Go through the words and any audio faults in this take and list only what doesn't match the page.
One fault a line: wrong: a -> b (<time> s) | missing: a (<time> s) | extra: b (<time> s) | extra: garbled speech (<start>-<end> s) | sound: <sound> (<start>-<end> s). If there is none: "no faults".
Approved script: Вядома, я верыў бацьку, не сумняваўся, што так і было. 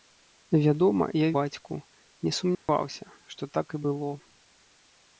missing: верыў (1.3 s)
sound: dropout (2.5-2.7 s)